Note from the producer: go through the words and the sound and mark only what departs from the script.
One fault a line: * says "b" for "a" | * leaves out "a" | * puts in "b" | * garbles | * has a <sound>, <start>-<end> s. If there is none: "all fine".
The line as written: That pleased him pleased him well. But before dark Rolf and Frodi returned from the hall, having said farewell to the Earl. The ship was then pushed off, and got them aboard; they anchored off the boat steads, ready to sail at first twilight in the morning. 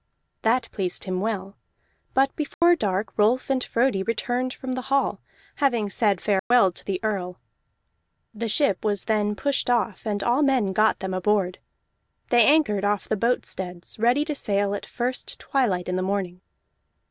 * leaves out "pleased him"
* has a dropout, 2.5-2.6 s
* has a dropout, 6.4-6.5 s
* puts in "all men"